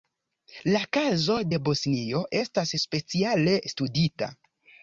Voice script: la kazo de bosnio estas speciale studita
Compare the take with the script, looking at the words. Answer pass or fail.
pass